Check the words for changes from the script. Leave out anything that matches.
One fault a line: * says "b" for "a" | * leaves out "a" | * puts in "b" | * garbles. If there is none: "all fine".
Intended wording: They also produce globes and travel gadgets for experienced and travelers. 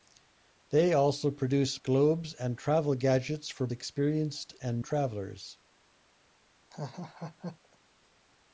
all fine